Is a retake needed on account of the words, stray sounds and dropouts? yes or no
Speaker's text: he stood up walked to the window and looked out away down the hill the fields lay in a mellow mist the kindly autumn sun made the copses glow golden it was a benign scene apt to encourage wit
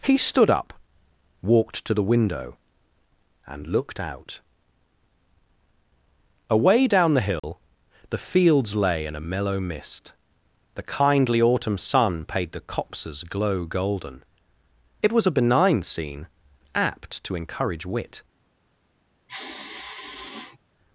yes